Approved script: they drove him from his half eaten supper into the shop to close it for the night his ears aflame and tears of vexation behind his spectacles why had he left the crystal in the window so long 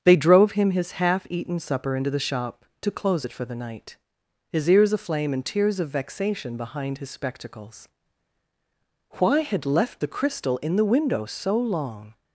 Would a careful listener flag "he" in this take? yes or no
yes